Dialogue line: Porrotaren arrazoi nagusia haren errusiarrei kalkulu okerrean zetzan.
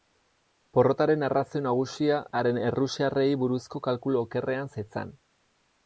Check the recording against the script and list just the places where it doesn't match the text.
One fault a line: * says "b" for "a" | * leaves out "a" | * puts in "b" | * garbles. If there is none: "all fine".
* puts in "buruzko"